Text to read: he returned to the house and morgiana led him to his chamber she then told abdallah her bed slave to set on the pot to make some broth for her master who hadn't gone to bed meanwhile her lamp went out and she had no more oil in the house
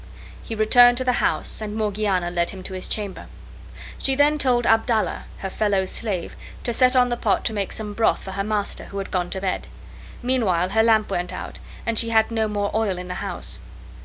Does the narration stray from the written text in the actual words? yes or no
yes